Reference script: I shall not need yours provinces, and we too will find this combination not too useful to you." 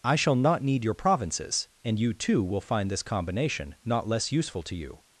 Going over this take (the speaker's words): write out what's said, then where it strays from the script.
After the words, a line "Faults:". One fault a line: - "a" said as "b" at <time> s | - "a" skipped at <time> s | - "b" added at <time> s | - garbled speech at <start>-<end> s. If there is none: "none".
I shall not need your provinces, and you too will find this combination not less useful to you."
Faults:
- "yours" said as "your" at 0.8 s
- "we" said as "you" at 2.0 s
- "too" said as "less" at 4.1 s